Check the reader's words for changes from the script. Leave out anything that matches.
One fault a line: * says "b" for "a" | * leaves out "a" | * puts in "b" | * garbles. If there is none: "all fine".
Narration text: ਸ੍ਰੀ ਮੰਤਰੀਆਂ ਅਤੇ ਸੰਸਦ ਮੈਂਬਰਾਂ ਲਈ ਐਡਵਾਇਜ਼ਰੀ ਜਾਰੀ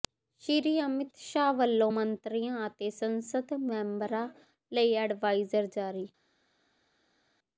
* puts in "ਅਮਿਤ ਸ਼ਾਹ ਵੱਲੋਂ"